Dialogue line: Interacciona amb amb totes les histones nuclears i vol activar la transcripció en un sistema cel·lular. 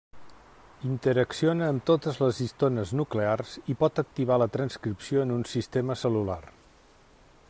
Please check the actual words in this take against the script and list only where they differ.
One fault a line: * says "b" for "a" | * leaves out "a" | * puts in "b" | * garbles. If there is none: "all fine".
* leaves out "amb"
* says "pot" for "vol"